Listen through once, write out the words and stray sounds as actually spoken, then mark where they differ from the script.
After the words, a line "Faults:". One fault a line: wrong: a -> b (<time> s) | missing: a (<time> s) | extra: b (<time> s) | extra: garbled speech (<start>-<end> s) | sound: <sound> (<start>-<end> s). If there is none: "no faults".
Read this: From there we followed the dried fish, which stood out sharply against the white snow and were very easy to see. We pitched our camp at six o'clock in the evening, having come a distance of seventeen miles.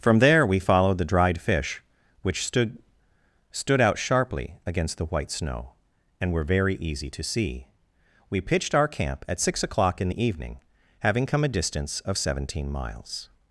From there we followed the dried fish, which stood stood out sharply against the white snow and were very easy to see. We pitched our camp at six o'clock in the evening, having come a distance of seventeen miles.
Faults:
extra: stood (3.5 s)